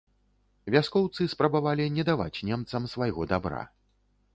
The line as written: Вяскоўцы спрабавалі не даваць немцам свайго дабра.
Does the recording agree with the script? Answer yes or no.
yes